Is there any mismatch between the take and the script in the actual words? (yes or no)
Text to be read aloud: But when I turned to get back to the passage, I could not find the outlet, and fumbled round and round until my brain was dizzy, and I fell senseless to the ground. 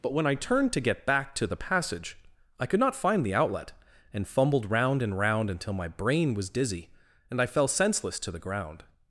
no